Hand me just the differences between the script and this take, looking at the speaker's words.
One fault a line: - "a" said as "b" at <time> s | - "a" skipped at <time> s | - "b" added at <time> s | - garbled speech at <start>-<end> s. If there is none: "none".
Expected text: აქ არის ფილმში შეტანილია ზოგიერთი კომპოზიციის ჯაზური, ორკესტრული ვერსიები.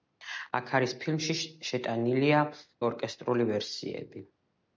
- "ზოგიერთი კომპოზიციის ჯაზური" skipped at 2.4 s